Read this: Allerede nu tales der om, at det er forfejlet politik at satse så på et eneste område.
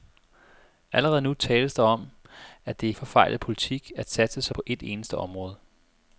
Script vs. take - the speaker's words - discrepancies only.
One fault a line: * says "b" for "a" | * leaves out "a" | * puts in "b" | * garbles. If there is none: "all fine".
all fine